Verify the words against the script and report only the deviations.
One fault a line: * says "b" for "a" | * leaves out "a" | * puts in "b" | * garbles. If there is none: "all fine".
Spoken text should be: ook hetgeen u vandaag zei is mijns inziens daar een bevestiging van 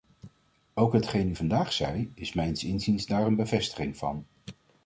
all fine